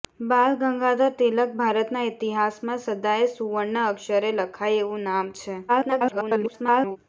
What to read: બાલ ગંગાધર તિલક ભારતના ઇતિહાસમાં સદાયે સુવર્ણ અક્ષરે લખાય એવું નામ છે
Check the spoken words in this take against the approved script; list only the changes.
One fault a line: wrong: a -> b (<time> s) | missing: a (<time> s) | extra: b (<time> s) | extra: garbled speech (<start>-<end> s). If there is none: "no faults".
extra: garbled speech (5.7-7.0 s)